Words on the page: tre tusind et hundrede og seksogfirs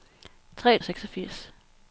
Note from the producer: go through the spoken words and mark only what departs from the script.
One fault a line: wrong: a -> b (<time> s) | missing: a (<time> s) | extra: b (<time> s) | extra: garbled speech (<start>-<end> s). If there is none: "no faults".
missing: tusind et hundrede (0.8 s)